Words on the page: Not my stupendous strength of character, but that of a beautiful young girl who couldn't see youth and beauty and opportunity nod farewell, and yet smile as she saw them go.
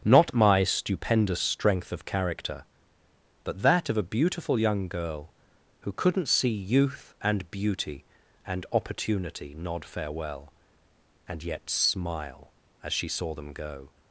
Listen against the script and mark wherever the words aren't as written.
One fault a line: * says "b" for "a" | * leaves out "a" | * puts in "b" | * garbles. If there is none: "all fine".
all fine